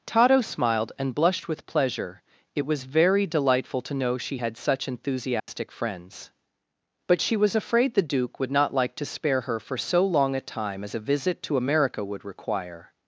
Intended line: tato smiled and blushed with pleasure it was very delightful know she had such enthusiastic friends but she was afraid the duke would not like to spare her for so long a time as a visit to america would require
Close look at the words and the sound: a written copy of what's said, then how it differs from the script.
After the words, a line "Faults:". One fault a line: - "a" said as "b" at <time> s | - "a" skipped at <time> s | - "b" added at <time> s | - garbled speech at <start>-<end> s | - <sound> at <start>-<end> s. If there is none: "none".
tato smiled and blushed with pleasure it was very delightful to know she had such enthusiastic friends but she was afraid the duke would not like to spare her for so long a time as a visit to america would require
Faults:
- "to" added at 3.8 s
- dropout at 5.4-5.5 s